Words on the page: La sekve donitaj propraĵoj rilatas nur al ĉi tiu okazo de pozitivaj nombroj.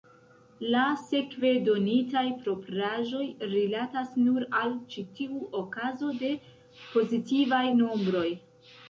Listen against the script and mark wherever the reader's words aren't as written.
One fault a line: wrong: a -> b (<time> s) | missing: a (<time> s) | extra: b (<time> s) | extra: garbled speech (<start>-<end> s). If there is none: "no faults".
no faults